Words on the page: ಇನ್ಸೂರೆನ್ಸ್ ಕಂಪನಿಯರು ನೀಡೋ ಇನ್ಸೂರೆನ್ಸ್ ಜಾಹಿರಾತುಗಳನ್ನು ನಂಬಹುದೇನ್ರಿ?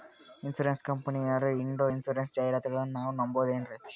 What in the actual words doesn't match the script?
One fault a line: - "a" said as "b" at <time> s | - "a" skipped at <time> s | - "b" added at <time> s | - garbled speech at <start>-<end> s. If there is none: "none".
- "ನಾವು" added at 2.9 s